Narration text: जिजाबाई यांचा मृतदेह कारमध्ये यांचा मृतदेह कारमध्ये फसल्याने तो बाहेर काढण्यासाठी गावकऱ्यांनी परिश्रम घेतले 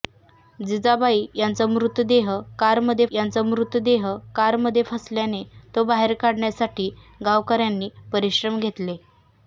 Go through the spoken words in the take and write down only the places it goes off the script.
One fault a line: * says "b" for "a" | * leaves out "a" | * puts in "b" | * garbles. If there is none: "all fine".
all fine